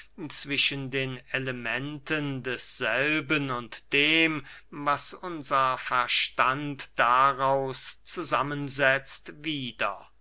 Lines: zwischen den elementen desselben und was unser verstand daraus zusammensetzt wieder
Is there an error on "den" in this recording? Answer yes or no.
no